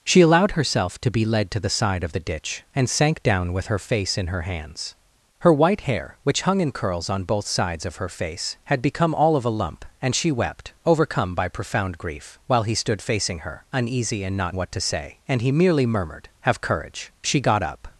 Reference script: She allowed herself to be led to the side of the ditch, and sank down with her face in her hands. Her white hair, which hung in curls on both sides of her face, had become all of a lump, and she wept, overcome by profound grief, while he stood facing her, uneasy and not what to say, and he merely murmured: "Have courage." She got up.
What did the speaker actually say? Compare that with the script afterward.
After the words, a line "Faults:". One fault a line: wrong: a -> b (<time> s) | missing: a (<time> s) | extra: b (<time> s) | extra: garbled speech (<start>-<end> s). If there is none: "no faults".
She allowed herself to be led to the side of the ditch, and sank down with her face in her hands. Her white hair, which hung in curls on both sides of her face, had become all of a lump, and she wept, overcome by profound grief, while he stood facing her, uneasy and not what to say, and he merely murmured: "Have courage." She got up.
Faults:
no faults